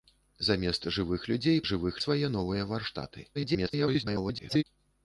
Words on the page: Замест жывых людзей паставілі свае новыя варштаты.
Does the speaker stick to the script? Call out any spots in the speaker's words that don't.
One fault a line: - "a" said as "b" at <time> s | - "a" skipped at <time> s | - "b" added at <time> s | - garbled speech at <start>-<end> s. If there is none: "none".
- "паставілі" said as "жывых" at 1.7 s
- garbled speech at 3.3-4.6 s